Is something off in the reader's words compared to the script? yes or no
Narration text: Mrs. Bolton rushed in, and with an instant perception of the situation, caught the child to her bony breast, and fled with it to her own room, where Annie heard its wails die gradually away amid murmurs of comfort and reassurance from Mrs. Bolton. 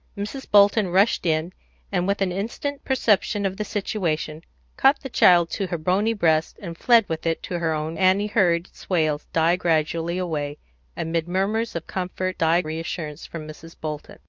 yes